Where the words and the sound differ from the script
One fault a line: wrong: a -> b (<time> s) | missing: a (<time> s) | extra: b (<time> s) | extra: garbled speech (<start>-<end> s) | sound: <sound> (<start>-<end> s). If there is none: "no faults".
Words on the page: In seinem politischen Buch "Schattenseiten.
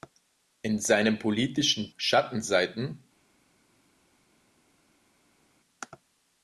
missing: Buch (1.9 s)